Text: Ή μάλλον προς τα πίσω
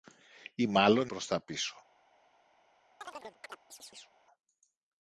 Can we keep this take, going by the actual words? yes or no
yes